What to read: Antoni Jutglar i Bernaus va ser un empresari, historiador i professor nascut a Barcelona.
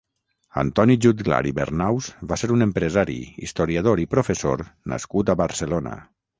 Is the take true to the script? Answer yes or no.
yes